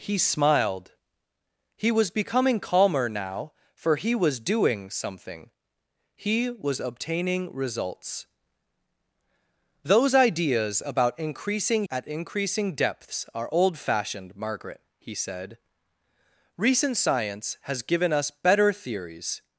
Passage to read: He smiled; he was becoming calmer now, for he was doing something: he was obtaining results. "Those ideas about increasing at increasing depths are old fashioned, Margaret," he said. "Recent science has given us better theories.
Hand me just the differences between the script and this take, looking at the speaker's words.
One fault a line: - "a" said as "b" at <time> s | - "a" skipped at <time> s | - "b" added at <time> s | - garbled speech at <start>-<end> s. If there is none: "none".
none